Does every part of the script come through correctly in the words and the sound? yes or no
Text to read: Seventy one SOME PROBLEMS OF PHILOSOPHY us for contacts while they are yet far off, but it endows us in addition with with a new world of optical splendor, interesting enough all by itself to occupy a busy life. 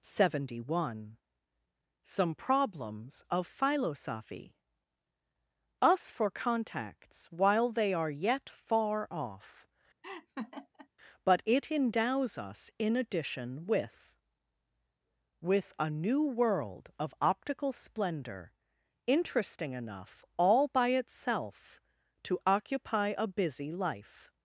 no